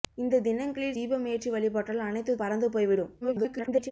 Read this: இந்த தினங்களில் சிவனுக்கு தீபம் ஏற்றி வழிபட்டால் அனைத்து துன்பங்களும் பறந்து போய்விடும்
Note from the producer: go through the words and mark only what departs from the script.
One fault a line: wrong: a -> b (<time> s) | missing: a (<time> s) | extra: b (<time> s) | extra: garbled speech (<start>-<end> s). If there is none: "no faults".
missing: சிவனுக்கு (1.0 s)
missing: துன்பங்களும் (2.4 s)
extra: garbled speech (3.2-3.9 s)